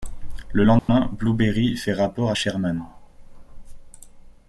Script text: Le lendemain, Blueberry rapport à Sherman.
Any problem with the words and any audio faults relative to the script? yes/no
yes